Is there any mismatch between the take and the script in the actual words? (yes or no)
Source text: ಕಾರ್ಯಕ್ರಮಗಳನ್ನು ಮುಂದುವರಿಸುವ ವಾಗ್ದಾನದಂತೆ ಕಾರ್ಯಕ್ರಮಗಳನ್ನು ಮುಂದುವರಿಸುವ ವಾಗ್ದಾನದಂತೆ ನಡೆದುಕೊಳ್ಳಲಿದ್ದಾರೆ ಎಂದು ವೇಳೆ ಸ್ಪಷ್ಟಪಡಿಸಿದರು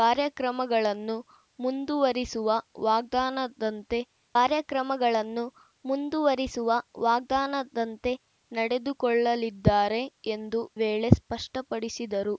no